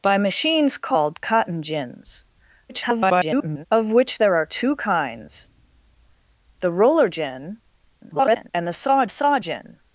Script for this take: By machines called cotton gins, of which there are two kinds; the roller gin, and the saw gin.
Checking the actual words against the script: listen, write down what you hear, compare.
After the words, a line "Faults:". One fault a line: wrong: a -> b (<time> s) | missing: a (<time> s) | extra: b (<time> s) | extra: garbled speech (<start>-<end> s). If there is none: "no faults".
By machines called cotton gins, [garbled] of which there are two kinds; the roller gin, [garbled] and the saw saw gin.
Faults:
extra: garbled speech (2.7-3.7 s)
extra: garbled speech (8.0-8.5 s)
extra: saw (9.1 s)